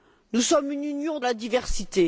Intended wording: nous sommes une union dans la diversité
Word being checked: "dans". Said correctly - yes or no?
no